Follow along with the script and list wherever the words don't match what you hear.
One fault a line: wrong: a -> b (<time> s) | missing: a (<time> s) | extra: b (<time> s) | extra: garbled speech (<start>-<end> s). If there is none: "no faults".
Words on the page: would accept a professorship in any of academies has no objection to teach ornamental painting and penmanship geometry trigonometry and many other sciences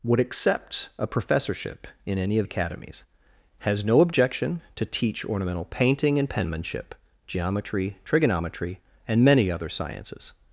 no faults